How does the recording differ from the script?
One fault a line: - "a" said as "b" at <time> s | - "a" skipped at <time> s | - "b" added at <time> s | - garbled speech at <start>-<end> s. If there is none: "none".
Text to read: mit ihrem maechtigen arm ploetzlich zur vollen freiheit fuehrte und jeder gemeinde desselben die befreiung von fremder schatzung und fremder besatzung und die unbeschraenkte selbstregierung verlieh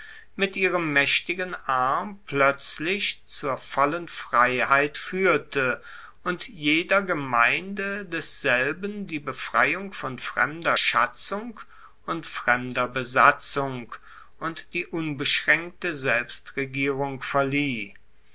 none